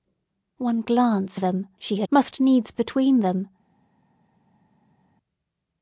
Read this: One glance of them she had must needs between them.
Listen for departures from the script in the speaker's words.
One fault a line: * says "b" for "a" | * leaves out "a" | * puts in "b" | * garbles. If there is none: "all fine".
all fine